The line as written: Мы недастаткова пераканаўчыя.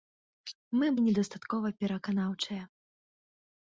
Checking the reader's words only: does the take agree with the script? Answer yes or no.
yes